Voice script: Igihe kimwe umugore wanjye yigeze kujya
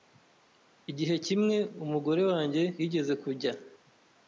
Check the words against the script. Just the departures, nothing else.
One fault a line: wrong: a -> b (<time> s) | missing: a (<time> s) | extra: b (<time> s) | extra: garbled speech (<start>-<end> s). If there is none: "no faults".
no faults